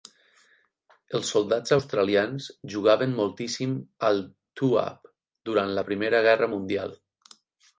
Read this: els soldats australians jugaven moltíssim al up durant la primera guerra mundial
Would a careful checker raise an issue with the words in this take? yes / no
yes